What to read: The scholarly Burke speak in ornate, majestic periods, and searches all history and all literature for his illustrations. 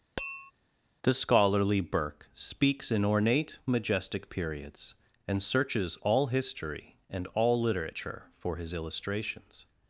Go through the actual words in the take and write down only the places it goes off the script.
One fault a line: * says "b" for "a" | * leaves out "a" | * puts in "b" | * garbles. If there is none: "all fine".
* says "speaks" for "speak"